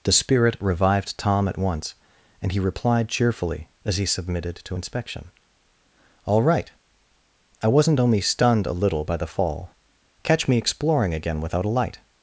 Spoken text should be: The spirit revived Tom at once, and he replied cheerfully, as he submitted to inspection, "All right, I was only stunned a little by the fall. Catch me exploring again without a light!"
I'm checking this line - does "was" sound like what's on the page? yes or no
no